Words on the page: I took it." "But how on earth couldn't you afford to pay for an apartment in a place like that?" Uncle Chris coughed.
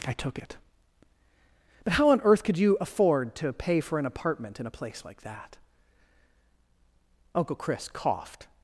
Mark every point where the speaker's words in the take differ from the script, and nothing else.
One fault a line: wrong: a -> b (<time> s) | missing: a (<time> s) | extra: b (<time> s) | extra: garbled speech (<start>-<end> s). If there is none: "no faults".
wrong: couldn't -> could (2.4 s)